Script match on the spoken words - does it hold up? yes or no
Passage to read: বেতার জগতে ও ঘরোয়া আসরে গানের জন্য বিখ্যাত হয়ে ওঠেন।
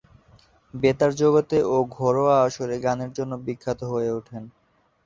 yes